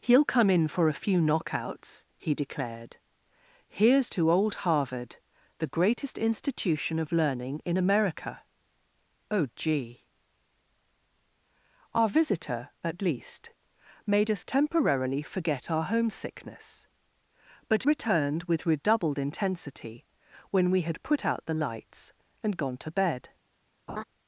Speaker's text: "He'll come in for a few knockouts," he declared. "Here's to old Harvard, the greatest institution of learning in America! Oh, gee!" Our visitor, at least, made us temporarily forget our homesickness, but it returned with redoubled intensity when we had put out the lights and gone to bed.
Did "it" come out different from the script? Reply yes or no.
yes